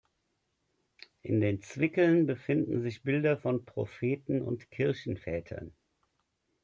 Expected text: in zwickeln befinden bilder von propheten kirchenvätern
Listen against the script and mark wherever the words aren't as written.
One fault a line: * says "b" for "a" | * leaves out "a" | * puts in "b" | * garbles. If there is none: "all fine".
* puts in "den"
* puts in "sich"
* puts in "und"